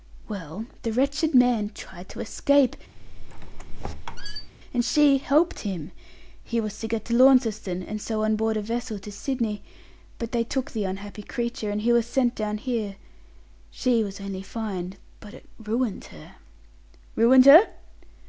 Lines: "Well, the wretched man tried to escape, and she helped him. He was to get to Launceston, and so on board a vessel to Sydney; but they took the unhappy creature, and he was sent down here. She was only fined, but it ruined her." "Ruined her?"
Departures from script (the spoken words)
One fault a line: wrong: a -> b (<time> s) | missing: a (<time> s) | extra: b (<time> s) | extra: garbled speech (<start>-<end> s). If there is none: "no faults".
no faults